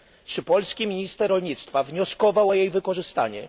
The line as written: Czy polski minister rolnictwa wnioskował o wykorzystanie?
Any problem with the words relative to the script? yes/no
yes